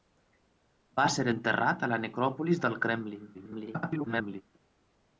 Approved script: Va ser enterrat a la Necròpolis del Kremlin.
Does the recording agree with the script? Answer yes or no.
no